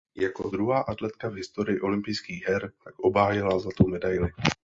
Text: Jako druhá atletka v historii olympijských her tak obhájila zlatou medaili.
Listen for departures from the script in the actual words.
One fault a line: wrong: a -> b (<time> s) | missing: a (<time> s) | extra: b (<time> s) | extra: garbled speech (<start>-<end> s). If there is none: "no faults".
no faults